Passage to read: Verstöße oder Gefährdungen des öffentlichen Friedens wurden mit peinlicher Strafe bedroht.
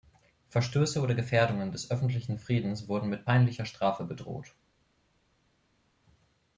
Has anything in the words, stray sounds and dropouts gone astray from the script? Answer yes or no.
no